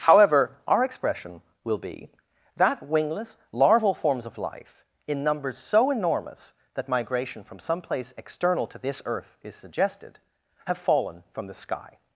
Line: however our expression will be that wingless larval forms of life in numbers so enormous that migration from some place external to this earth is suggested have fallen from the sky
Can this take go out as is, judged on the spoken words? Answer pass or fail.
pass